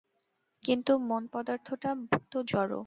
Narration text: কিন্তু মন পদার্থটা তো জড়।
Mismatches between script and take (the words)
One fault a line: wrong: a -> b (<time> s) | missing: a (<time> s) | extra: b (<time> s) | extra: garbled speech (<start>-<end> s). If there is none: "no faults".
no faults